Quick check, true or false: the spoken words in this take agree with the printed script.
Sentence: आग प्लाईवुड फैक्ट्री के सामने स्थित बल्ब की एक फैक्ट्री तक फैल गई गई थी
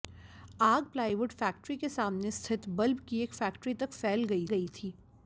true